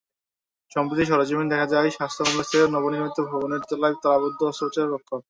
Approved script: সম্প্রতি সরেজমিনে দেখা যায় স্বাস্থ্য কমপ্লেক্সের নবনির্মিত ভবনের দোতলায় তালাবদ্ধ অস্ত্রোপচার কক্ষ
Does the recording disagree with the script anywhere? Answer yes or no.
no